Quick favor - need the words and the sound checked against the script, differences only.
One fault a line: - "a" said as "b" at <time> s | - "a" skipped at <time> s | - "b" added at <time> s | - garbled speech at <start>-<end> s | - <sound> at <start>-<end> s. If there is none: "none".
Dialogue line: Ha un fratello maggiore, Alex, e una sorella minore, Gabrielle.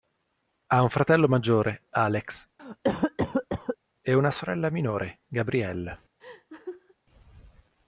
- cough at 2.6-3.8 s
- laugh at 6.2-6.9 s